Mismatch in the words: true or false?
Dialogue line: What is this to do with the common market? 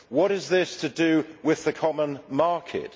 false